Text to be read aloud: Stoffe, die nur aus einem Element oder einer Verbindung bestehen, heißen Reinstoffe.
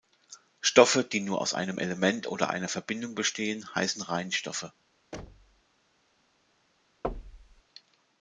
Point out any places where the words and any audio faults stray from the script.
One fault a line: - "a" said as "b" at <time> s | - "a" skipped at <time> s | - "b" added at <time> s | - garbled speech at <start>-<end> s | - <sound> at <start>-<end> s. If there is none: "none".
- thud at 5.1-5.6 s
- thud at 7.0-7.6 s